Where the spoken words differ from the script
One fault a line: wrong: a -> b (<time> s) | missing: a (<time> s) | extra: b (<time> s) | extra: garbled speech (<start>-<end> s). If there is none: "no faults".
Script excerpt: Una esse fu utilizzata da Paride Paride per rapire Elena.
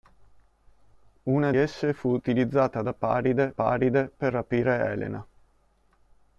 no faults